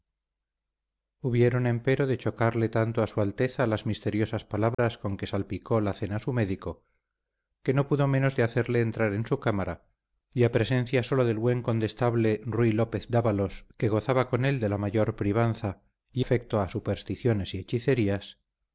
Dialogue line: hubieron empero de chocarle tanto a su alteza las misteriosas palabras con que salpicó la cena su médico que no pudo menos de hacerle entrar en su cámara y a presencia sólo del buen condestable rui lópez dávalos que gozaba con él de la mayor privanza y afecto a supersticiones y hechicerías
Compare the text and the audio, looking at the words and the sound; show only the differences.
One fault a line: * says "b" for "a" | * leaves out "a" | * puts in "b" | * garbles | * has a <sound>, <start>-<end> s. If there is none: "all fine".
* has a dropout, 4.7-4.8 s